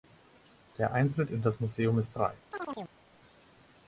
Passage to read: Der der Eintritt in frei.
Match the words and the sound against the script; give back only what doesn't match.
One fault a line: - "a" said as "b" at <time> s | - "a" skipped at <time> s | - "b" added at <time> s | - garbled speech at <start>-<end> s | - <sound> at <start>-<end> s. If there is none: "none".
- "der" skipped at 0.9 s
- "das Museum ist" added at 1.4 s
- chirp at 2.5-3.0 s